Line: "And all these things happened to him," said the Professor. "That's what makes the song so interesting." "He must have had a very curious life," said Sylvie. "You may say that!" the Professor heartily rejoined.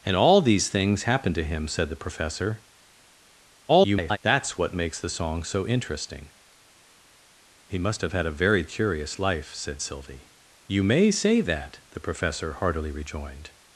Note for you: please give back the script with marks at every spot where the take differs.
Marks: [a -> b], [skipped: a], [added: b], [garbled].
"And all these things happened to him," said the Professor. [garbled] "That's what makes the song so interesting." "He must have had a very curious life," said Sylvie. "You may say that!" the Professor heartily rejoined.